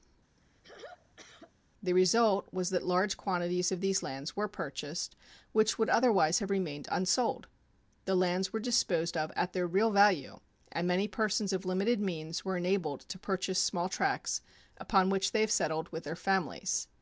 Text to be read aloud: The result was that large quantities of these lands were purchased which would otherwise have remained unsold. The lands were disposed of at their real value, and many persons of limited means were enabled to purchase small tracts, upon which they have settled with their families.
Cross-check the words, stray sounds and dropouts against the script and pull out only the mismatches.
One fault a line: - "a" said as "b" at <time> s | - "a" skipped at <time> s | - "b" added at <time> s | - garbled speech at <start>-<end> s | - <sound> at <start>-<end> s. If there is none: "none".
- throat clearing at 0.4-1.5 s